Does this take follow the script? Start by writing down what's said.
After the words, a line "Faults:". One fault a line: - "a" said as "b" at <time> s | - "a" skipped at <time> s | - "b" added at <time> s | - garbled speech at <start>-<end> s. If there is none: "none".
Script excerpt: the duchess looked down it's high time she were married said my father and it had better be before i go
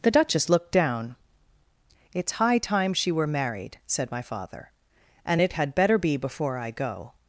the duchess looked down it's high time she were married said my father and it had better be before i go
Faults:
none